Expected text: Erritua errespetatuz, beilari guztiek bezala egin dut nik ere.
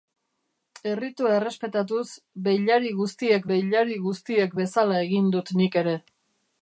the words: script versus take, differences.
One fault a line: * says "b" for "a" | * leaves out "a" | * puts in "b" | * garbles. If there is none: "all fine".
* puts in "beilari guztiek"